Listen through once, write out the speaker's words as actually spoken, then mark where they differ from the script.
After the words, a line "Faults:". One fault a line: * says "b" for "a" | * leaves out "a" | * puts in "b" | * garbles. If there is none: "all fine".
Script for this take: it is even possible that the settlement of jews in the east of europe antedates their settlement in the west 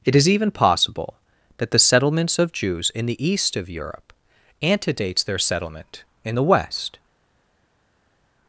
it is even possible that the settlements of jews in the east of europe antedates their settlement in the west
Faults:
* says "settlements" for "settlement"